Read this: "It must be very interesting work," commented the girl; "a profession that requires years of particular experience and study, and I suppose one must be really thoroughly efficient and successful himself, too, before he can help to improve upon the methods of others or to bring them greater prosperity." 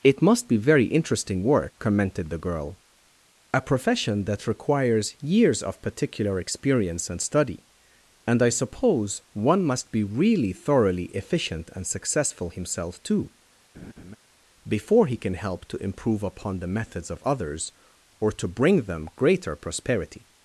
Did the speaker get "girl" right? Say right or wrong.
right